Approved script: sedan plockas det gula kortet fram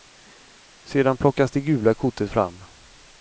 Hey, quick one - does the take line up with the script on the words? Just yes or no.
yes